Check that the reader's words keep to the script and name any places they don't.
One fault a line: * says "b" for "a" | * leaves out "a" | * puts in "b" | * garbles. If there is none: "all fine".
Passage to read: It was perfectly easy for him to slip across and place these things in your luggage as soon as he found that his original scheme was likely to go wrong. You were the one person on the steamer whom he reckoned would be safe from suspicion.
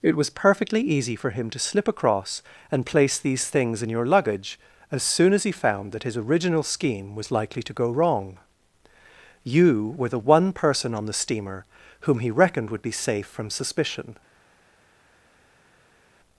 all fine